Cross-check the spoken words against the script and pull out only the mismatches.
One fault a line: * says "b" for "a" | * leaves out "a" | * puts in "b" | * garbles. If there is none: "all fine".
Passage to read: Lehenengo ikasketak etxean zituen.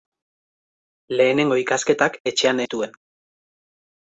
all fine